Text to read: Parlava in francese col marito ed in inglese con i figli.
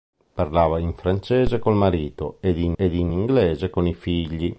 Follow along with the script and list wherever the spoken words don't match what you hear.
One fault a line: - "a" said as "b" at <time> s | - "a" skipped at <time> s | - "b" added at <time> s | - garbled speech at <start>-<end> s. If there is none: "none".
- "ed in" added at 2.8 s